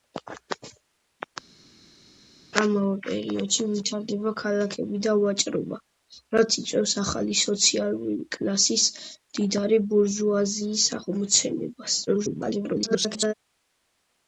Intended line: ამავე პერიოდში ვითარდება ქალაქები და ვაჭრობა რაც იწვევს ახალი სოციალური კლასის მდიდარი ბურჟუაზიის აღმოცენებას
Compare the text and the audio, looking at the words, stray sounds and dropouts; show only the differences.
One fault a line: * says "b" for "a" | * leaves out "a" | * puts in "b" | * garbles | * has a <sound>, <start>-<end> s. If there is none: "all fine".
* garbles